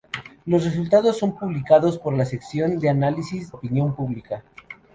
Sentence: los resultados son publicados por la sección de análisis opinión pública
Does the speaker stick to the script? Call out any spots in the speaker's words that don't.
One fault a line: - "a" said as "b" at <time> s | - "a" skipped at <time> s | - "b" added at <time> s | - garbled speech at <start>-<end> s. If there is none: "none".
none